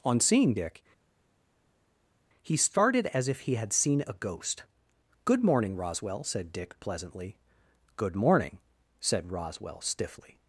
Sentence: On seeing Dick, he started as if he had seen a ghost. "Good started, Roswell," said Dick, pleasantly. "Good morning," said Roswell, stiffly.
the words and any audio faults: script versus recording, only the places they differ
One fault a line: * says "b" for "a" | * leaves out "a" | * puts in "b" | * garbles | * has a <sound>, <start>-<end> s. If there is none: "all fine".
* says "morning" for "started"